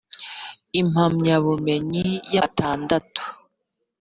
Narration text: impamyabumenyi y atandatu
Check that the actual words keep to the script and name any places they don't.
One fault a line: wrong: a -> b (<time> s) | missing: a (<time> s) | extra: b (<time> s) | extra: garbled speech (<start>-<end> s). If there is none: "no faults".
no faults